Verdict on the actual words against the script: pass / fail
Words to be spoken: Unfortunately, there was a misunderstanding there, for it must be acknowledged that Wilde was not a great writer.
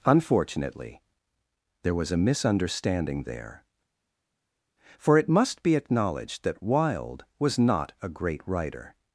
pass